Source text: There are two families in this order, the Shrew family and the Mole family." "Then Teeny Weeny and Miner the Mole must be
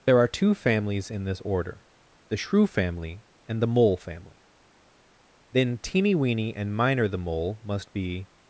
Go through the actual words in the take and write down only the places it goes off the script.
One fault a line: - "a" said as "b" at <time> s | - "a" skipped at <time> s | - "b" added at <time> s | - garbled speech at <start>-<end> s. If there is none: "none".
none